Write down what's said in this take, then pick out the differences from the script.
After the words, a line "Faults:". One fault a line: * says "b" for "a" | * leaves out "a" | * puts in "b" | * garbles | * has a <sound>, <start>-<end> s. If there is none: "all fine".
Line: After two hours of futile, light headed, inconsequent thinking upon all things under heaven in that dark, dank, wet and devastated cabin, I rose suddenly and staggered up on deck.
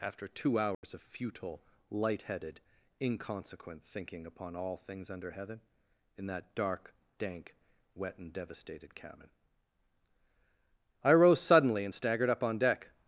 After two hours of futile, light headed, inconsequent thinking upon all things under heaven in that dark, dank, wet and devastated cabin, I rose suddenly and staggered up on deck.
Faults:
* has a dropout, 0.7-0.8 s